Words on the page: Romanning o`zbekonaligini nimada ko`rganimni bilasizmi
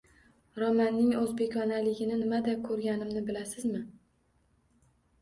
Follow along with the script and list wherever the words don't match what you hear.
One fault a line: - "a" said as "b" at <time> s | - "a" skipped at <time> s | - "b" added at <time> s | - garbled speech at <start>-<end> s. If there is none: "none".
none